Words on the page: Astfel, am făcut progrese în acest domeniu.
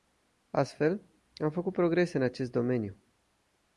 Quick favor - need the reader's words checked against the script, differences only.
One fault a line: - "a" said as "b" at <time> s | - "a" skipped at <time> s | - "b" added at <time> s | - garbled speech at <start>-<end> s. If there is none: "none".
none